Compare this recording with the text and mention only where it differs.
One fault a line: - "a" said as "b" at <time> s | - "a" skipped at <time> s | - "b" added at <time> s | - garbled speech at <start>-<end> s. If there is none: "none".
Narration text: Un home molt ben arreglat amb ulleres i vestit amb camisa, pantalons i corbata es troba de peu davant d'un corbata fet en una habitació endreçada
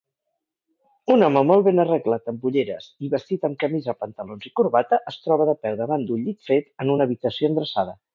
- "corbata" said as "llit" at 6.3 s